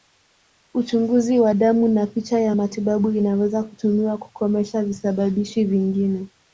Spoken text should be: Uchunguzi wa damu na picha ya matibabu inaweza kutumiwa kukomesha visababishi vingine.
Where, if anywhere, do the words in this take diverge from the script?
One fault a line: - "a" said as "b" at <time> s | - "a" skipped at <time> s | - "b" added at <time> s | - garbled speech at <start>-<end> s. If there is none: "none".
none